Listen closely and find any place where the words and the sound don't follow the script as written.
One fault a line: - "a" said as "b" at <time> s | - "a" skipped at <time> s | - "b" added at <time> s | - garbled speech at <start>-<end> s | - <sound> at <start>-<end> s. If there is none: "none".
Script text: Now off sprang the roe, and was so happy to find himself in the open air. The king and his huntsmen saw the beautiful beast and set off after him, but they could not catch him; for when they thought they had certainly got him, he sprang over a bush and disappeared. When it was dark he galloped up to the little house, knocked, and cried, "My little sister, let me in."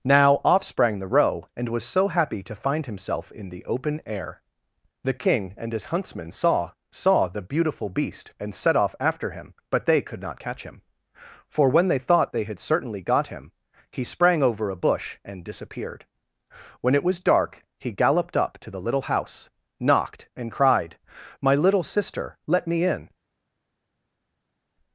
- "saw" added at 6.9 s